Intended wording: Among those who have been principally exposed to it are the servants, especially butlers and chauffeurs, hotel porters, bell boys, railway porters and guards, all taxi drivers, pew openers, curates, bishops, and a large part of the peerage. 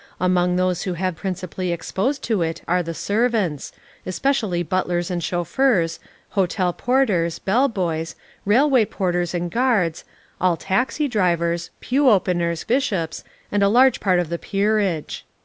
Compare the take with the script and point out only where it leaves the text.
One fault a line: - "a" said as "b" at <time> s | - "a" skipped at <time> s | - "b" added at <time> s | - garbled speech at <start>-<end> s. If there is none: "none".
- "been" skipped at 1.1 s
- "curates" skipped at 12.6 s